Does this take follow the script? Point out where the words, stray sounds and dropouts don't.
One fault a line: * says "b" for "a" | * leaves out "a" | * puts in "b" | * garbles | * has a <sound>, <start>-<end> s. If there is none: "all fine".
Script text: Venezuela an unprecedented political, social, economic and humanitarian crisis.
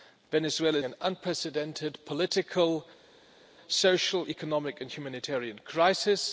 all fine